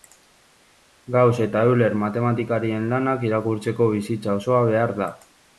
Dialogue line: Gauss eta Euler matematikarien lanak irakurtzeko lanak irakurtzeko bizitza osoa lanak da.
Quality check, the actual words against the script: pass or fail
fail